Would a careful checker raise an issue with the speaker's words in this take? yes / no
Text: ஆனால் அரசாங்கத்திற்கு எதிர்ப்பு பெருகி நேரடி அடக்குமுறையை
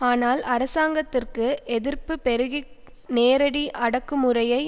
no